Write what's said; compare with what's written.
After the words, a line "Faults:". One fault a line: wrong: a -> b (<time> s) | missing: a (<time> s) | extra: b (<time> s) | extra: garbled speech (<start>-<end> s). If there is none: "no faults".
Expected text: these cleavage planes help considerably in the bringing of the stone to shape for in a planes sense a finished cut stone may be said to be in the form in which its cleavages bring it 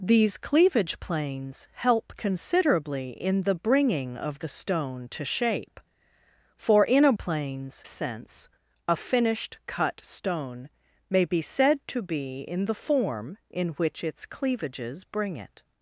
these cleavage planes help considerably in the bringing of the stone to shape for in a planes sense a finished cut stone may be said to be in the form in which its cleavages bring it
Faults:
no faults